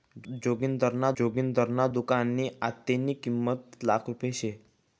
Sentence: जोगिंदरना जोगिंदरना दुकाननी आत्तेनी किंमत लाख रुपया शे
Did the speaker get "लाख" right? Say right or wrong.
right